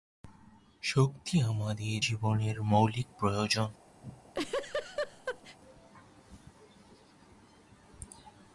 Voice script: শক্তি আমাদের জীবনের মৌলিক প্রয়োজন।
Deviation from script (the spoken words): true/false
false